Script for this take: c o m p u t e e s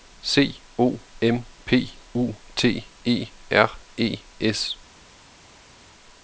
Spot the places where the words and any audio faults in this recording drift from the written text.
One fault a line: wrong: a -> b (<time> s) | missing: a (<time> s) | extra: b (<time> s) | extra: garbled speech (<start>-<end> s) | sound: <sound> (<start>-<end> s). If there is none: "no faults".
extra: r (3.5 s)